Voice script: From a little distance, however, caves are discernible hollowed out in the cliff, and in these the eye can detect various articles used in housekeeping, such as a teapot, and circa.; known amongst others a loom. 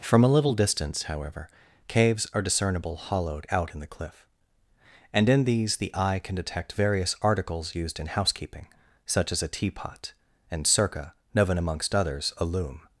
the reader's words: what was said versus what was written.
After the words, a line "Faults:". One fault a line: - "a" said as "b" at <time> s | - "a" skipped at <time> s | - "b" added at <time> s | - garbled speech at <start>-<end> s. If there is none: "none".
From a little distance, however, caves are discernible hollowed out in the cliff, and in these the eye can detect various articles used in housekeeping, such as a teapot, and circa.; known amongst others a loom.
Faults:
none